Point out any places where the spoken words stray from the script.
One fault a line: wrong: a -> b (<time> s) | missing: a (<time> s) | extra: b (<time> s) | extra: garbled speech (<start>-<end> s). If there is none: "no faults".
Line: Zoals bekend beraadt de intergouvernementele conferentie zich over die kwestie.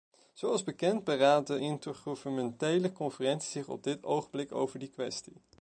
extra: op dit ogenblik (3.7 s)